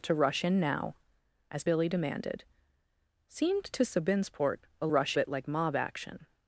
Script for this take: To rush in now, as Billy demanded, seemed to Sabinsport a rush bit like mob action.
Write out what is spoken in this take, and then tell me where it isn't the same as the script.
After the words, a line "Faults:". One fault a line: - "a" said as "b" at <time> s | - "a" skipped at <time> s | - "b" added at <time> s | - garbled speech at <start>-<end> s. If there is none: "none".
To rush in now, as Billy demanded, seemed to Sabinsport a rush bit like mob action.
Faults:
none